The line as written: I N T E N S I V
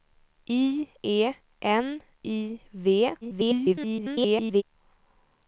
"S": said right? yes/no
no